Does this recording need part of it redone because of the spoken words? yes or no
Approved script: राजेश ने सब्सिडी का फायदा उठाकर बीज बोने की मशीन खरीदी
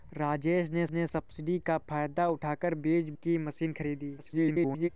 yes